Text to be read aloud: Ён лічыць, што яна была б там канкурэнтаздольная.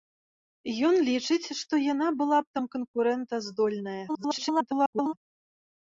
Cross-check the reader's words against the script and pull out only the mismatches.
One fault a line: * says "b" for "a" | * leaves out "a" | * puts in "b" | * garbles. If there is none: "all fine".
* garbles